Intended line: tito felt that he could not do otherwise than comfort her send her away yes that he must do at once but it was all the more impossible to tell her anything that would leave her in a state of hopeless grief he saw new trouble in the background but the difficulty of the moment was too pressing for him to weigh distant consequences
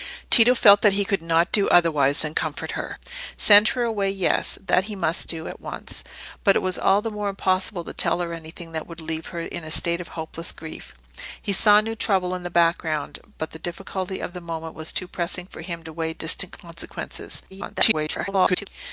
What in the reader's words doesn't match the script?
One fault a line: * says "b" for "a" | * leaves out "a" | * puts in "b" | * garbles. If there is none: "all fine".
* garbles